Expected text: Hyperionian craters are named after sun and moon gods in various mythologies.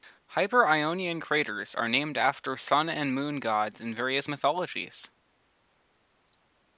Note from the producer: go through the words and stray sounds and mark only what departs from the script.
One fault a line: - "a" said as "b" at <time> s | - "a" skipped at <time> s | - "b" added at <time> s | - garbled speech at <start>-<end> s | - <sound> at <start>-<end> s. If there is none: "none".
none